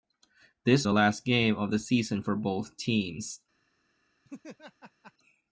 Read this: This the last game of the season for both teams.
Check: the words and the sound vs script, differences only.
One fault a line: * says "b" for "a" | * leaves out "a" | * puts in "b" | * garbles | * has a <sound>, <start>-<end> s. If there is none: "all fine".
* has a laugh, 4.2-5.1 s